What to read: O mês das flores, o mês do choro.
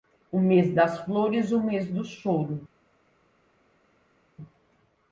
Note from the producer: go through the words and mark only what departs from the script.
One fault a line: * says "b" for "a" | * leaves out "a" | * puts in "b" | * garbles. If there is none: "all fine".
all fine